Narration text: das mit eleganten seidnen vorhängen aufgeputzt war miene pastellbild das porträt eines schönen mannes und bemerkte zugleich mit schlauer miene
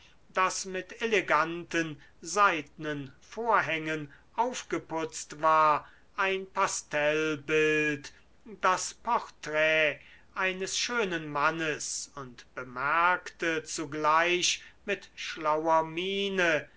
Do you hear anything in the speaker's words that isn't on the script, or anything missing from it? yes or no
yes